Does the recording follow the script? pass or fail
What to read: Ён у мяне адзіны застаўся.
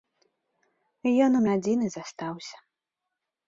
fail